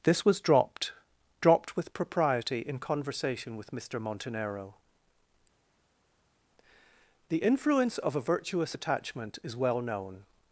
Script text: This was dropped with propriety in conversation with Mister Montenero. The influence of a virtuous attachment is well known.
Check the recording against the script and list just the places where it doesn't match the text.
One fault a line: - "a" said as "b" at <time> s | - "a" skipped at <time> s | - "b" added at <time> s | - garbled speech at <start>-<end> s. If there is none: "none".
- "dropped" added at 1.4 s